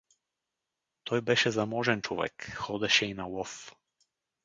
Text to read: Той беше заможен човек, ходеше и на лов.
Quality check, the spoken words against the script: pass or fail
pass